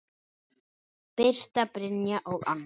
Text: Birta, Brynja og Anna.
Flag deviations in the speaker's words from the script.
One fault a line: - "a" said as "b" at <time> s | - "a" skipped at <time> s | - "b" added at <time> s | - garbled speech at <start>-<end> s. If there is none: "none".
none